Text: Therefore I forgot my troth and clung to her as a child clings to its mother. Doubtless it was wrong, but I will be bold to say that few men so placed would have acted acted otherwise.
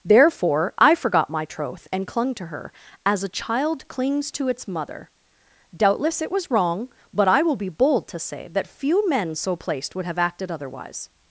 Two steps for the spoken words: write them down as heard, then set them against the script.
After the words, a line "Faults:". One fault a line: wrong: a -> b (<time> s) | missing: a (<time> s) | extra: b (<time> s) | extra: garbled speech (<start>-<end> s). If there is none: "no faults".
Therefore I forgot my troth and clung to her as a child clings to its mother. Doubtless it was wrong, but I will be bold to say that few men so placed would have acted otherwise.
Faults:
missing: acted (10.5 s)